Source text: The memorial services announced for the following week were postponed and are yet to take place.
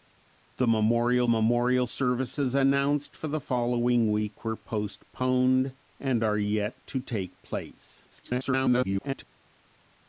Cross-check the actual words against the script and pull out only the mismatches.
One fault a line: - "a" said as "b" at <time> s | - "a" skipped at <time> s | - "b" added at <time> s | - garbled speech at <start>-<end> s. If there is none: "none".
- "memorial" added at 1.3 s
- garbled speech at 8.1-9.2 s